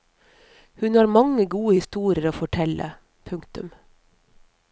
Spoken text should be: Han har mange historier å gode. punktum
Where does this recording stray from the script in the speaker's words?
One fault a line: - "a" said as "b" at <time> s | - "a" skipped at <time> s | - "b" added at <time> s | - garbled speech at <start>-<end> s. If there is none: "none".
- "Han" said as "Hun" at 0.8 s
- "gode" added at 1.4 s
- "gode" said as "fortelle" at 2.4 s